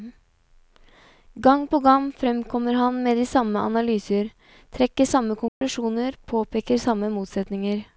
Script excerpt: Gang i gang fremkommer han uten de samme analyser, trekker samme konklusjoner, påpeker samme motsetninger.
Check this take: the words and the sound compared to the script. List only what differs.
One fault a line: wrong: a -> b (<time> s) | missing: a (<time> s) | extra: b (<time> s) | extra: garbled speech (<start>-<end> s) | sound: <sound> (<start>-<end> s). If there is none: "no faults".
wrong: i -> på (1.6 s)
wrong: uten -> med (3.0 s)
sound: dropout (5.5-5.6 s)